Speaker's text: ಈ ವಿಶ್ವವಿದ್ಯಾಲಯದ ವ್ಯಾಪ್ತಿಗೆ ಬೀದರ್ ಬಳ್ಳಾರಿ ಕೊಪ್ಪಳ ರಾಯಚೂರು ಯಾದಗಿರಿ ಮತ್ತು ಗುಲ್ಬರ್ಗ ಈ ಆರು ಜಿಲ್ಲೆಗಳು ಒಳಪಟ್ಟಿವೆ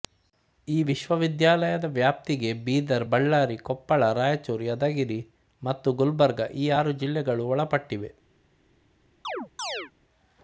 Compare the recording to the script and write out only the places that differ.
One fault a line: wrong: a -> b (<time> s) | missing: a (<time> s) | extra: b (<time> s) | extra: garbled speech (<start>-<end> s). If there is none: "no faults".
no faults